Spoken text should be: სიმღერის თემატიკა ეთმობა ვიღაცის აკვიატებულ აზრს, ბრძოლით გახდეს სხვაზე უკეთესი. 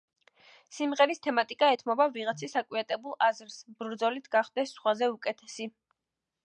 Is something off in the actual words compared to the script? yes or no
no